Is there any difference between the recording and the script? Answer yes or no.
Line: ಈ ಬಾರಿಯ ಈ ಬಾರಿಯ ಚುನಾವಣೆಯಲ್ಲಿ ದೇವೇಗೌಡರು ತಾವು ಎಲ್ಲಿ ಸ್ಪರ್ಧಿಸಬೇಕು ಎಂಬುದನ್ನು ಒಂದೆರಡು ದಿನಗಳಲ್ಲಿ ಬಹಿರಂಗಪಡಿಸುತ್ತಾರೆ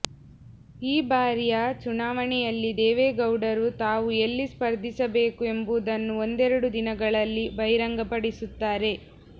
yes